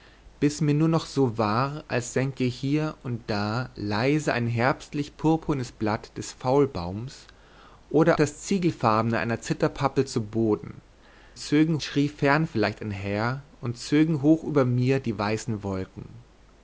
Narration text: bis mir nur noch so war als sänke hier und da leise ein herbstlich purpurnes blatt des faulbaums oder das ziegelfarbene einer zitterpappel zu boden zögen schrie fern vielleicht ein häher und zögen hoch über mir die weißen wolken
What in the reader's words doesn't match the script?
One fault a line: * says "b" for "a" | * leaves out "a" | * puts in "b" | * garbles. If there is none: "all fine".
all fine